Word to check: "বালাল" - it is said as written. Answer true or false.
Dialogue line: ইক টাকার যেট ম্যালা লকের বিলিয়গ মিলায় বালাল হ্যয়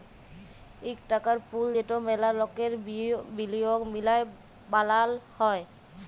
true